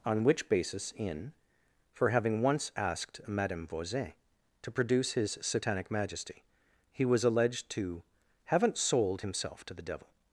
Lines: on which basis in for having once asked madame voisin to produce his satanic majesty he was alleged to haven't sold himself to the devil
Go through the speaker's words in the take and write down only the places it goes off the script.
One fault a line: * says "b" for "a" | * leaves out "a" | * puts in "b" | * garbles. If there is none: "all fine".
all fine